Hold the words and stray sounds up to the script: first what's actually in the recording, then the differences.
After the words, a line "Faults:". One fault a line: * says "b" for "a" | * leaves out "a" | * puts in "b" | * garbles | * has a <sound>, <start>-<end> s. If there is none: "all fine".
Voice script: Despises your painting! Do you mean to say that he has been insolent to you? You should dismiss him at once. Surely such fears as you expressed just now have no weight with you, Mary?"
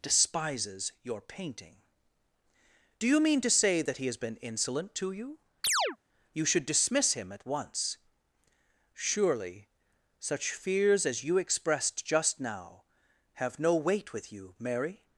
Despises your painting! Do you mean to say that he has been insolent to you? You should dismiss him at once. Surely such fears as you expressed just now have no weight with you, Mary?"
Faults:
* has a chirp, 5.6-6.0 s